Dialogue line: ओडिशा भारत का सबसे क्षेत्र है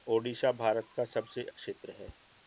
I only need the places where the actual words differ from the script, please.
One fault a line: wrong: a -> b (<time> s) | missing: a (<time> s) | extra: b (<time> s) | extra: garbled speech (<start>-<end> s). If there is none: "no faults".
no faults